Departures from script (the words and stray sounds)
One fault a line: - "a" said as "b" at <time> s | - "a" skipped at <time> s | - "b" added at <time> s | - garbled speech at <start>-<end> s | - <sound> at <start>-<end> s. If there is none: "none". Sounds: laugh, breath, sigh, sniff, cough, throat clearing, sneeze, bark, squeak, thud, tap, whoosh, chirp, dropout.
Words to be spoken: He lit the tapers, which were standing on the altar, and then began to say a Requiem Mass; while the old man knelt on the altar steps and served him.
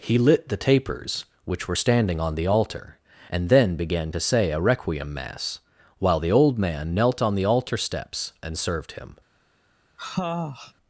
- sniff at 10.0-10.7 s